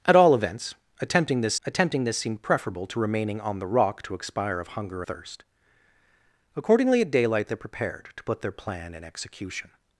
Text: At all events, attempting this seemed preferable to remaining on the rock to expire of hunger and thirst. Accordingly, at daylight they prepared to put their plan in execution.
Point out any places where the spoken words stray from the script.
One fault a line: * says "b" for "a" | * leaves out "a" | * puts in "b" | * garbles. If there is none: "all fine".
* puts in "attempting this"
* leaves out "and"